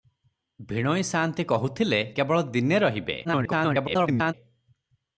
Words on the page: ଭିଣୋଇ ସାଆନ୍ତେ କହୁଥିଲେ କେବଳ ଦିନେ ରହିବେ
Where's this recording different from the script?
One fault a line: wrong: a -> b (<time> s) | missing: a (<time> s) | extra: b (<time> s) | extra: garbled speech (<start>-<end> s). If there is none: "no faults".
extra: garbled speech (3.2-4.3 s)